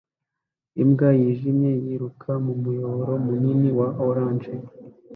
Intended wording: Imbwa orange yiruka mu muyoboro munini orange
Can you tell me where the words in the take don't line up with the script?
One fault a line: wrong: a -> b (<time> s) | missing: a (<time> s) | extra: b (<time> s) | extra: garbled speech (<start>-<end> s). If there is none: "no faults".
wrong: orange -> yijimye (1.2 s)
extra: wa (3.8 s)